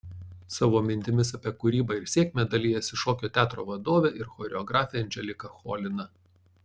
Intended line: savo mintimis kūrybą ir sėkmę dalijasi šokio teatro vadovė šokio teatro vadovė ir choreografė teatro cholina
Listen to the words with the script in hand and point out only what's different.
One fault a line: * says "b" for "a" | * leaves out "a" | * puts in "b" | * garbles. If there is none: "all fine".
* puts in "apie"
* leaves out "šokio teatro vadovė"
* says "anželika" for "teatro"